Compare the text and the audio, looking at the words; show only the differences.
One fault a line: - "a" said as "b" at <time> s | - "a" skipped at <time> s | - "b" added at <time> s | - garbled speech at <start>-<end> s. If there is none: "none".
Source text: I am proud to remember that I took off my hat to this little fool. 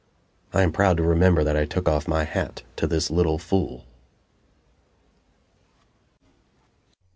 none